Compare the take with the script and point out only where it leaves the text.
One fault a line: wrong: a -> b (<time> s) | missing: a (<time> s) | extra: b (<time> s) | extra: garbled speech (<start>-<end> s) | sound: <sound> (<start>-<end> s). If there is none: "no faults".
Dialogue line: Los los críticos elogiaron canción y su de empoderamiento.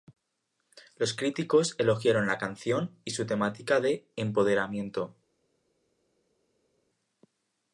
missing: los (1.1 s)
extra: la (2.2 s)
extra: temática (3.3 s)